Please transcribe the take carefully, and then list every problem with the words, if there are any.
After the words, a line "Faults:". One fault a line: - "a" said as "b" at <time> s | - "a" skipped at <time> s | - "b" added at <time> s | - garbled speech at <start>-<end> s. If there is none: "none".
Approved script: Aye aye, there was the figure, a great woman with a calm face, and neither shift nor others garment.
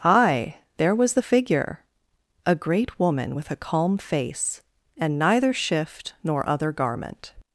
Aye, there was the figure, a great woman with a calm face, and neither shift nor other garment.
Faults:
- "aye" skipped at 0.6 s
- "others" said as "other" at 6.5 s